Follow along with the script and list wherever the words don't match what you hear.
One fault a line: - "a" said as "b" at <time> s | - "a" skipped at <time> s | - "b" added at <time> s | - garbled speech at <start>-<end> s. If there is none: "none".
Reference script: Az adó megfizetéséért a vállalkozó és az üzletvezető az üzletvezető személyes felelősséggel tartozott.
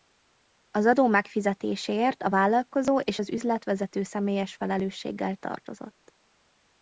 - "az üzletvezető" skipped at 4.0 s